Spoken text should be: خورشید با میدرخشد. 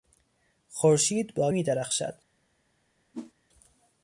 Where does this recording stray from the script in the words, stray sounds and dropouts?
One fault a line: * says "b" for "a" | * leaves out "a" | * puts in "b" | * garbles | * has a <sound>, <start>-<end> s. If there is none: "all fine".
* has a whoosh, 3.1-3.3 s